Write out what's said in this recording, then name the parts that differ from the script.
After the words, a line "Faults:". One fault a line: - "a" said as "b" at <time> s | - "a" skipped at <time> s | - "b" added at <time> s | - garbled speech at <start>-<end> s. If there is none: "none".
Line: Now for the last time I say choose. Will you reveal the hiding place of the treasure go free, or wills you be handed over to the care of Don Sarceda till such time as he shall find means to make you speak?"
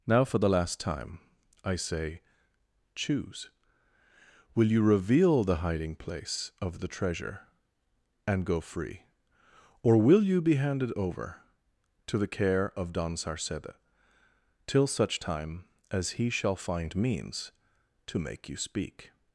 Now for the last time I say choose. Will you reveal the hiding place of the treasure and go free, or will you be handed over to the care of Don Sarceda till such time as he shall find means to make you speak?"
Faults:
- "and" added at 8.3 s
- "wills" said as "will" at 10.0 s